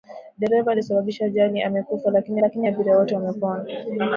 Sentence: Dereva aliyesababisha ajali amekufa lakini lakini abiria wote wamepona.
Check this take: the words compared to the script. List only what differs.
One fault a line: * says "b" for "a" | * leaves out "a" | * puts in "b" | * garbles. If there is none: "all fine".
all fine